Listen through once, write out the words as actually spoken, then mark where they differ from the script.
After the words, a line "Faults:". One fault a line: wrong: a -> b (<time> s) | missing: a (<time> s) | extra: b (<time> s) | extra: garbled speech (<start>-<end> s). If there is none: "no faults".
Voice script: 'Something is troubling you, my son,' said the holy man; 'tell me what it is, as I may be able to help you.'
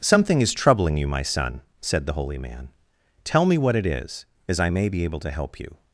'Something is troubling you, my son,' said the holy man; 'tell me what it is, as I may be able to help you.'
Faults:
no faults